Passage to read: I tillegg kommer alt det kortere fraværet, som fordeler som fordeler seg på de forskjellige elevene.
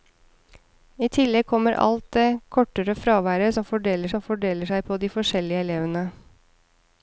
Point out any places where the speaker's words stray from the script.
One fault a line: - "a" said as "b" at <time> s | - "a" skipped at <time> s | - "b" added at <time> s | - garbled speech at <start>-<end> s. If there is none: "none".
none